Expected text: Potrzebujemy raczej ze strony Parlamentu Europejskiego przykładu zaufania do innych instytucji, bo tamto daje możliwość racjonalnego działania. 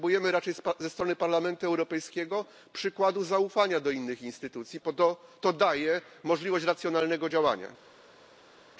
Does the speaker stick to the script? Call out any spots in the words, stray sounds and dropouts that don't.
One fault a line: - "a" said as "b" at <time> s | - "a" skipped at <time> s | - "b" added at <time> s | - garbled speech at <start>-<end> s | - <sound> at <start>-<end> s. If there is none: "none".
- "tamto" said as "to" at 5.4 s